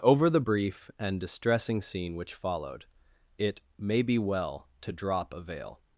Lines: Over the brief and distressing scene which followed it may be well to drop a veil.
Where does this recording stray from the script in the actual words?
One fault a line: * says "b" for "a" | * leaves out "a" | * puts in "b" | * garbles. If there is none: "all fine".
all fine